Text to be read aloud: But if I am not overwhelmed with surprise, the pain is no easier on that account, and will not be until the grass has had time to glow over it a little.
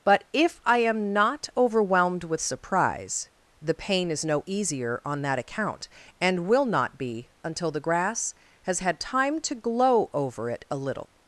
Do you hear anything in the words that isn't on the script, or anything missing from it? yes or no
no